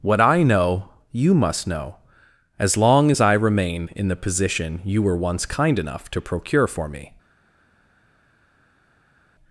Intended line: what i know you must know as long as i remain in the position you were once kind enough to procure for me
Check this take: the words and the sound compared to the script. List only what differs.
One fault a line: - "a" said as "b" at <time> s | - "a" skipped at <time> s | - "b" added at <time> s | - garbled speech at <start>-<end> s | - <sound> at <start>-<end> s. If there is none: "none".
none